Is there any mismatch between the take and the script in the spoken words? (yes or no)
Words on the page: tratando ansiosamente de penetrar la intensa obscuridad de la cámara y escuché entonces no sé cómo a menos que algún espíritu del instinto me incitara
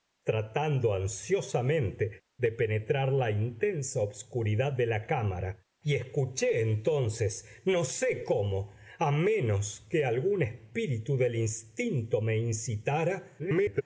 yes